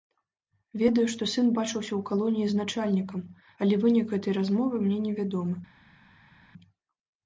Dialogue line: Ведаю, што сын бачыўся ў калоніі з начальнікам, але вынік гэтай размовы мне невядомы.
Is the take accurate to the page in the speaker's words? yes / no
yes